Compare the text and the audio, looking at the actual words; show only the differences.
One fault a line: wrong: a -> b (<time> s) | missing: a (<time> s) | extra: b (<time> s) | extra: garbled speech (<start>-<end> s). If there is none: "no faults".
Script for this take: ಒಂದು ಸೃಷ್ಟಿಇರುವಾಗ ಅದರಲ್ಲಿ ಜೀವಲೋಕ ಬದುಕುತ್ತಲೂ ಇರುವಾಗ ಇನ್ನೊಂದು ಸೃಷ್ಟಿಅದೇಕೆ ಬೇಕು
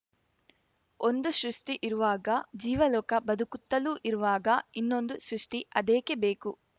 missing: ಅದರಲ್ಲಿ (2.3 s)